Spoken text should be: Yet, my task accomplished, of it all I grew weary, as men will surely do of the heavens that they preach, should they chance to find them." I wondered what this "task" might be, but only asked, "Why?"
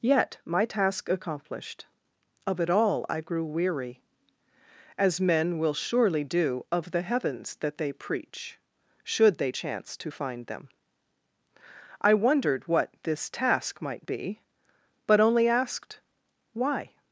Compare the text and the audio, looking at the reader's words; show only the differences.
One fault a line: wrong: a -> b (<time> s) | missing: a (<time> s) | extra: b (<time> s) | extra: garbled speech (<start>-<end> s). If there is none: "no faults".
no faults